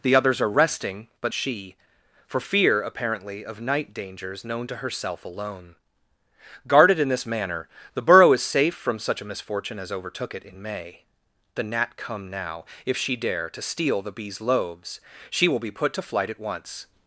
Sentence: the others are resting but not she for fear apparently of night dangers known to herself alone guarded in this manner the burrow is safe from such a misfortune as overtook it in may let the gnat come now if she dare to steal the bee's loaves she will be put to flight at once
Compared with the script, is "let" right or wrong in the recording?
wrong